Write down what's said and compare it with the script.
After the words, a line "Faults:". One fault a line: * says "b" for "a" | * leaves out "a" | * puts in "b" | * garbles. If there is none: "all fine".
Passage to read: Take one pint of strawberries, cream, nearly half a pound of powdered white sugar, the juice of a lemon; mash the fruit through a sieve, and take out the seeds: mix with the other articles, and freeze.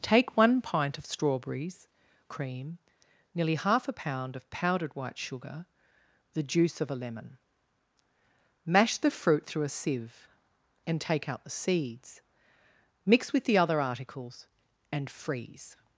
Take one pint of strawberries, cream, nearly half a pound of powdered white sugar, the juice of a lemon; mash the fruit through a sieve, and take out the seeds: mix with the other articles, and freeze.
Faults:
all fine